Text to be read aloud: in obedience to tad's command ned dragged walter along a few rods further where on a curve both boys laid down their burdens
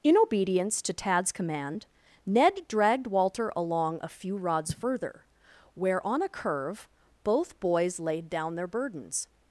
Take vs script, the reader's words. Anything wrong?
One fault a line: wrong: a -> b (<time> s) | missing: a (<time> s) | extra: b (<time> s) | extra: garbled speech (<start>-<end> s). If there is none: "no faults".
no faults